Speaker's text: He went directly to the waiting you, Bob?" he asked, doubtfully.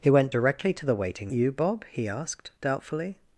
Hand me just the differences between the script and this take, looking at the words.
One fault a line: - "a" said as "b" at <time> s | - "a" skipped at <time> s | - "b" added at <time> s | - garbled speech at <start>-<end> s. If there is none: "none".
none